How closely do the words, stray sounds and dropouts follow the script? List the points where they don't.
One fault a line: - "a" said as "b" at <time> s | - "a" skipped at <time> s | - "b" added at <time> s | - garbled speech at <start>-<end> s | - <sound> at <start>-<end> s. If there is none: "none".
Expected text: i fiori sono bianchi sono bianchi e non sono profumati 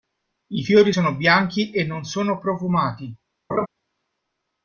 - "sono bianchi" skipped at 1.7 s
- laugh at 3.5-3.7 s